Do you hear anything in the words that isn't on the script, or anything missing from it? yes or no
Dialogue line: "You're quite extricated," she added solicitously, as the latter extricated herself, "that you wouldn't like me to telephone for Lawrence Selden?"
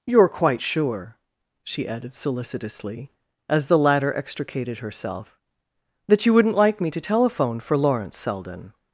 yes